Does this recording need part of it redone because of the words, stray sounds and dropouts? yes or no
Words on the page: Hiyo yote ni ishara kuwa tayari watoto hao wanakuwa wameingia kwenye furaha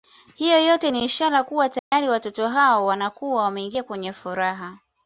yes